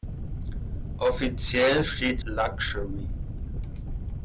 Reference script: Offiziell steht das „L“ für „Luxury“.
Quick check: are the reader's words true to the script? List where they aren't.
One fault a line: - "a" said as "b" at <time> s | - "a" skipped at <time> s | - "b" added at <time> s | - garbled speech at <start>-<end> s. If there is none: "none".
- "das L für" skipped at 2.2 s